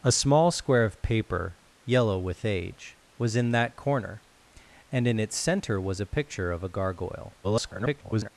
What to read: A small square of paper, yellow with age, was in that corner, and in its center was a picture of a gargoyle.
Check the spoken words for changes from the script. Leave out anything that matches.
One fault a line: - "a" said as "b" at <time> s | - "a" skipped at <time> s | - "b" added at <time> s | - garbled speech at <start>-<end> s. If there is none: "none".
- garbled speech at 7.4-8.3 s